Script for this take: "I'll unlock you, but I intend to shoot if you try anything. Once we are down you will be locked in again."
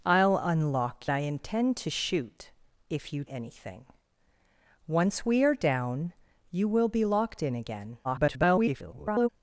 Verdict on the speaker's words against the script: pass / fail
fail